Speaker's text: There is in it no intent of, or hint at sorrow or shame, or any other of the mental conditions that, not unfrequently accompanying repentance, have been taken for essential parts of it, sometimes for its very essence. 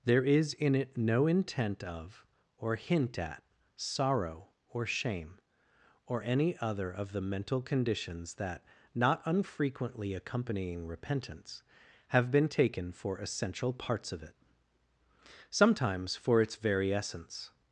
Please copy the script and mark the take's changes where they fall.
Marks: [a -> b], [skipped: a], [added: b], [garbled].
There is in it no intent of, or hint at sorrow or shame, or any other of the mental conditions that, not unfrequently accompanying repentance, have been taken for essential parts of it, sometimes for its very essence.